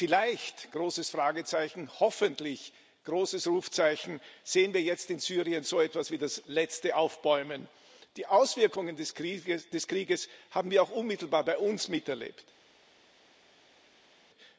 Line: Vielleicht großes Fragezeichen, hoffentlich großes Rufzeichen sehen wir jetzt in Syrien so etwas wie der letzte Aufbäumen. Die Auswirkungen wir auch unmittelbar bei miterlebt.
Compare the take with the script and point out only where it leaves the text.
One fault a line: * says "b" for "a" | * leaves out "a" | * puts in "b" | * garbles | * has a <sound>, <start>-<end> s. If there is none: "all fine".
* says "das" for "der"
* puts in "des Krieges haben"
* puts in "uns"